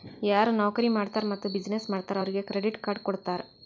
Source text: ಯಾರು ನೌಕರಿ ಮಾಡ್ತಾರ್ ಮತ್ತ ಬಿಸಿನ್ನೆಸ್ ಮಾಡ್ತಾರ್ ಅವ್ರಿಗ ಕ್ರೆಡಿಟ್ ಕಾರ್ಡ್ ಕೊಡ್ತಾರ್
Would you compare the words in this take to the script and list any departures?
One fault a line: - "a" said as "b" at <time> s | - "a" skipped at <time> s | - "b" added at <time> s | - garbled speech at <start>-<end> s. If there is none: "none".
none